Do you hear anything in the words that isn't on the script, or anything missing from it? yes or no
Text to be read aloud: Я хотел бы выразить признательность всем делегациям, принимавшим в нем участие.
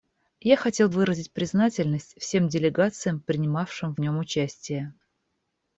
yes